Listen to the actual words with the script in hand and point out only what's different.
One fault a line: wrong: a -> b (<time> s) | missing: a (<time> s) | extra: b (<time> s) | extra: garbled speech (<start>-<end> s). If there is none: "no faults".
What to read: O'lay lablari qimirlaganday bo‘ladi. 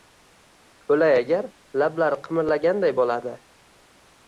extra: agar (1.2 s)